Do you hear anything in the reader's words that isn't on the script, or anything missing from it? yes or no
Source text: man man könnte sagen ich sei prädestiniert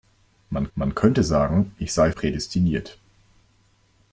no